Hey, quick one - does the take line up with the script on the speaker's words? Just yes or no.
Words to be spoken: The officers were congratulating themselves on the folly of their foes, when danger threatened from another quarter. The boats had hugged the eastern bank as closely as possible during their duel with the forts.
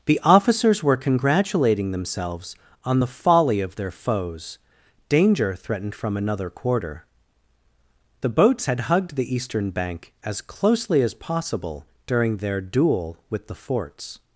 no